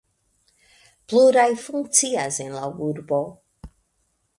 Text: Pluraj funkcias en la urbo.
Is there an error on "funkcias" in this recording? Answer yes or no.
no